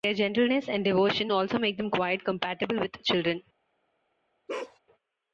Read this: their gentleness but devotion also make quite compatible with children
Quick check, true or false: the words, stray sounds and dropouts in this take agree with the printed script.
false